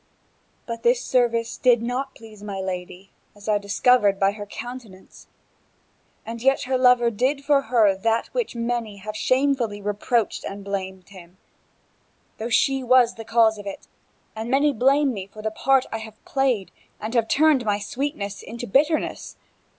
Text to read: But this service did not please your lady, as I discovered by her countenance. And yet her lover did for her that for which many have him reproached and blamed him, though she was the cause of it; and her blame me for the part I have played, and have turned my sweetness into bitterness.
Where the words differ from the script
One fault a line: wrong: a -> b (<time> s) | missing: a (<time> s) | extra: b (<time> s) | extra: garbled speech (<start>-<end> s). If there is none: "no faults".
wrong: your -> my (2.4 s)
wrong: him -> shamefully (9.2 s)
wrong: her -> many (14.5 s)